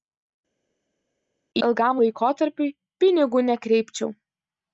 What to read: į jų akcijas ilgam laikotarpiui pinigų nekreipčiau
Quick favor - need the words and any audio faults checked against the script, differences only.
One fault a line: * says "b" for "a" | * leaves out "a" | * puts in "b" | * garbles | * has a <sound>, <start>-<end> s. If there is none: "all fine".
* leaves out "jų akcijas"